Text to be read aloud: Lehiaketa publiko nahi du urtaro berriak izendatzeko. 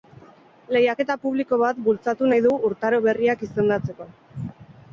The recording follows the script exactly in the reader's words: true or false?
false